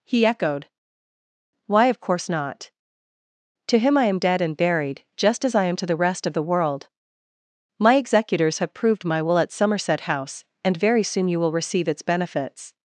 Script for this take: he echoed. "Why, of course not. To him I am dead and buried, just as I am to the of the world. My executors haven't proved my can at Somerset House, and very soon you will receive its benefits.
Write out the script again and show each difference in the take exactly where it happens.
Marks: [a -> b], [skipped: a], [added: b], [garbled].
he echoed. "Why, of course not. To him I am dead and buried, just as I am to the [added: rest] of the world. My executors [haven't -> have] proved my [can -> will] at Somerset House, and very soon you will receive its benefits.